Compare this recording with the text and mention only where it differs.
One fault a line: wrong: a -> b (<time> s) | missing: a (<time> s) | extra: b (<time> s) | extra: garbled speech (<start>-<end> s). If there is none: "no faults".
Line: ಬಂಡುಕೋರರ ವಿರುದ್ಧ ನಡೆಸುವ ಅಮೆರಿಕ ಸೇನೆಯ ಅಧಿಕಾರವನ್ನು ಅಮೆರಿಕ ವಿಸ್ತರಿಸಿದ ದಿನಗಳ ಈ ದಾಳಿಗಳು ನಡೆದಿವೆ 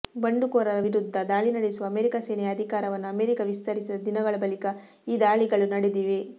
extra: ದಾಳಿ (1.3 s)
extra: ಬಳಿಕ (4.4 s)